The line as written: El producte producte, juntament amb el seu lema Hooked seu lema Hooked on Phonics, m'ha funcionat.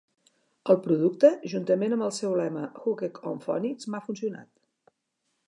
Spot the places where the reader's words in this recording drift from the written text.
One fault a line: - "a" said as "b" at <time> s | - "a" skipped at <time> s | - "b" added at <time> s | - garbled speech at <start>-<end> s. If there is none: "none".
- "producte" skipped at 1.3 s
- "seu lema Hooked" skipped at 3.2 s